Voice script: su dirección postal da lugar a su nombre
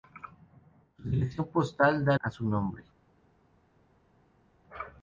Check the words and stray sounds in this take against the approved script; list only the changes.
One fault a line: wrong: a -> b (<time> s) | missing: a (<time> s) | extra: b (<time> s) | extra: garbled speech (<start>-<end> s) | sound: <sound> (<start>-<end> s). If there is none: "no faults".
missing: lugar (2.2 s)